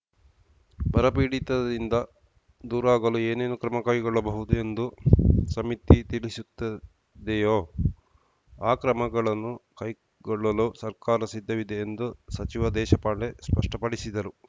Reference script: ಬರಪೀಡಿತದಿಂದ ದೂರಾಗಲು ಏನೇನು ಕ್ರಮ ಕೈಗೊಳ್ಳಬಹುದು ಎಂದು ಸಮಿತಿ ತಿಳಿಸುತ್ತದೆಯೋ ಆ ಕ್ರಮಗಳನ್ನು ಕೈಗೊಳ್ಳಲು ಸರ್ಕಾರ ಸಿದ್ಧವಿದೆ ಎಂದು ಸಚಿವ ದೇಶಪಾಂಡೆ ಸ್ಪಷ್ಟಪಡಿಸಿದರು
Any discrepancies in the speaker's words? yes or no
no